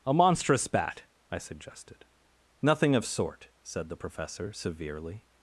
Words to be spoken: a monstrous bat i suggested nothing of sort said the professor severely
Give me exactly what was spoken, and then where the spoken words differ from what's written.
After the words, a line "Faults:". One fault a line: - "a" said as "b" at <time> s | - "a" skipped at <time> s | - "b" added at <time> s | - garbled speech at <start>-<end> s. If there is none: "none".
a monstrous bat i suggested nothing of sort said the professor severely
Faults:
none